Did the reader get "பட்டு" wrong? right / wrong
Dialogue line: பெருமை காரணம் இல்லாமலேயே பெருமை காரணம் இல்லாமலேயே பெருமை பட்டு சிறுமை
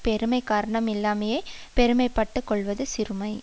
wrong